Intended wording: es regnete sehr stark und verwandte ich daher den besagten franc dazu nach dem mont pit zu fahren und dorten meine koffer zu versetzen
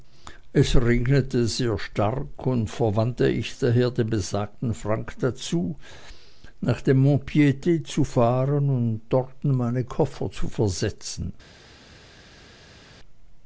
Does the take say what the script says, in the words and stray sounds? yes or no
yes